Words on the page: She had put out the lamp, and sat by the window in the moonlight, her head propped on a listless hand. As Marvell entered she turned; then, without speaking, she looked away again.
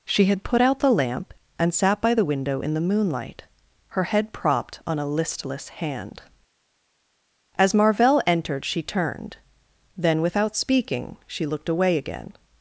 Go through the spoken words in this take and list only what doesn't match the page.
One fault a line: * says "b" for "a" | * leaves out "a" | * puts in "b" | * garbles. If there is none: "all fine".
all fine